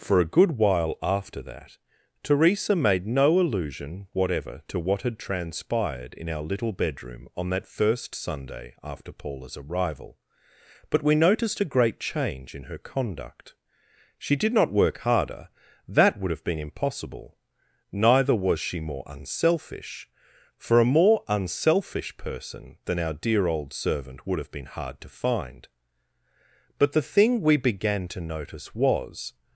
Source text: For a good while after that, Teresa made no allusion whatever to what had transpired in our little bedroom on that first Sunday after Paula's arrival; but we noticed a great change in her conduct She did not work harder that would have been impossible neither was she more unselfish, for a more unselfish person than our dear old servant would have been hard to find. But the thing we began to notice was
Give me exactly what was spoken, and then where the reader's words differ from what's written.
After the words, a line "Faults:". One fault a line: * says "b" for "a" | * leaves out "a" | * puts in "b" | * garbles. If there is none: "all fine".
For a good while after that, Teresa made no allusion whatever to what had transpired in our little bedroom on that first Sunday after Paula's arrival; but we noticed a great change in her conduct She did not work harder that would have been impossible neither was she more unselfish, for a more unselfish person than our dear old servant would have been hard to find. But the thing we began to notice was
Faults:
all fine